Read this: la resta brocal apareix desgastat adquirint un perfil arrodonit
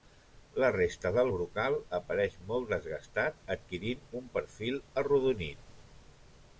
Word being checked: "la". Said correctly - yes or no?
yes